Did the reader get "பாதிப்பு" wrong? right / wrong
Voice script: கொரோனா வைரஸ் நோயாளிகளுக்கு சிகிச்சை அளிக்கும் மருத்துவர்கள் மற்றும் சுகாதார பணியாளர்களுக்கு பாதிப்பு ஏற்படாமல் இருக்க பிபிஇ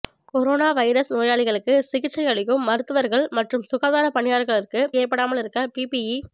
wrong